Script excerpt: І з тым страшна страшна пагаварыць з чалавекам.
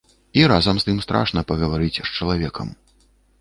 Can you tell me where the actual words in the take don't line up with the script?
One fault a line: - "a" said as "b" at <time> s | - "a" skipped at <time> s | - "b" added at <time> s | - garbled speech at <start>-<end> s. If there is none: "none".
- "разам" added at 0.5 s
- "страшна" skipped at 1.4 s